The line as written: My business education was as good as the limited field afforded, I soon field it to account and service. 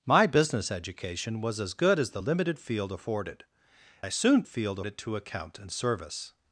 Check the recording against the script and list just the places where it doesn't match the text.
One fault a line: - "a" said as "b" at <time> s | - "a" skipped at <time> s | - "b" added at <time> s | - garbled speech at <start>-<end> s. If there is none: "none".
none